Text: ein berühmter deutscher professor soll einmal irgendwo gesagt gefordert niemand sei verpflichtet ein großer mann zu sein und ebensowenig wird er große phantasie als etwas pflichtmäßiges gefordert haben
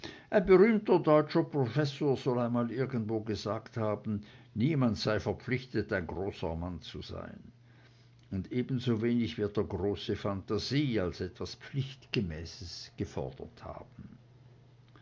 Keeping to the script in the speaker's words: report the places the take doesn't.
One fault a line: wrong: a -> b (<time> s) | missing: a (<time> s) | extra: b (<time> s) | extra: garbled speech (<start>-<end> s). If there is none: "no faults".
wrong: gefordert -> haben (3.8 s)